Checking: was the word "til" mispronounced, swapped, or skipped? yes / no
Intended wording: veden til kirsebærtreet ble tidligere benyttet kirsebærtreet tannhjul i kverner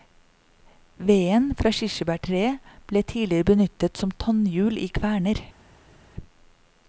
yes